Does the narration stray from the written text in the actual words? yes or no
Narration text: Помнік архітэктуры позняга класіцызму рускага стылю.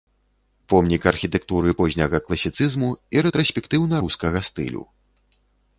yes